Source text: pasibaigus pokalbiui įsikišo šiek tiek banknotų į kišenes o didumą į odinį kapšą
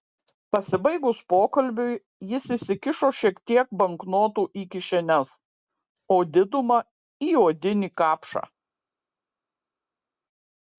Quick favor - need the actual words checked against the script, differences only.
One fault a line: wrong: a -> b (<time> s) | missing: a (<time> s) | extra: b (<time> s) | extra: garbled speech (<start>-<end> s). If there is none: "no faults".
extra: jis (2.3 s)